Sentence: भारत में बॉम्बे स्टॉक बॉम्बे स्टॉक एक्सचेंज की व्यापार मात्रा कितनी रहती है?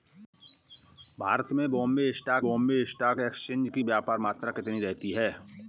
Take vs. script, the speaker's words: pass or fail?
pass